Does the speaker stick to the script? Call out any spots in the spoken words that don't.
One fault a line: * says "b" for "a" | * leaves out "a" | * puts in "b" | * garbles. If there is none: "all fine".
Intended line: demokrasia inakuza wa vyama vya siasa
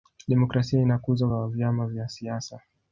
all fine